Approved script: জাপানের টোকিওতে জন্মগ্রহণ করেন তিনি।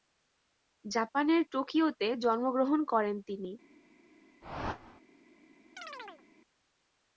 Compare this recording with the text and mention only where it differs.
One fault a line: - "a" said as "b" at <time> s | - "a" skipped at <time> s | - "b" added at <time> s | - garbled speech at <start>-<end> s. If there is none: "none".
none